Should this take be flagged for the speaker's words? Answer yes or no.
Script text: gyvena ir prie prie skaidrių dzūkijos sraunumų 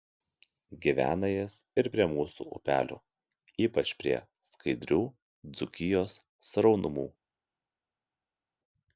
yes